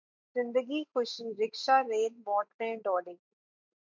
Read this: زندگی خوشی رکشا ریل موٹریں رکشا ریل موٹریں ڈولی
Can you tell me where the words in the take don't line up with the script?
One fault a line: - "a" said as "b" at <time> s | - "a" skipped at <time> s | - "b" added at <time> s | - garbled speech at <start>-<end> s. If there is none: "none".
- "رکشا ریل موٹریں" skipped at 2.7 s